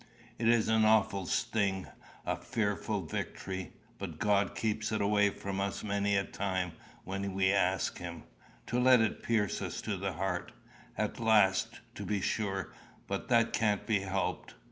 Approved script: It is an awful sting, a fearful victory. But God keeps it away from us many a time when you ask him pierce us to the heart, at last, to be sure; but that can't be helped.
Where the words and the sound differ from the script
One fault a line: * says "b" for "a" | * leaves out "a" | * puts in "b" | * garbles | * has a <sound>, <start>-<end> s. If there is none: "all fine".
* says "we" for "you"
* puts in "to let it"